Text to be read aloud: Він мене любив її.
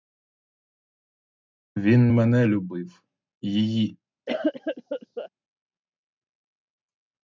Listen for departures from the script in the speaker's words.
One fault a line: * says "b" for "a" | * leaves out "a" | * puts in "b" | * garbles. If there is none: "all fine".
all fine